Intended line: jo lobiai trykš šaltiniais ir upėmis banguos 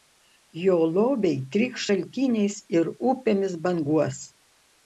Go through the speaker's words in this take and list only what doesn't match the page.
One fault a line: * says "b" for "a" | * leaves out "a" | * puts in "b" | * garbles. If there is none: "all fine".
all fine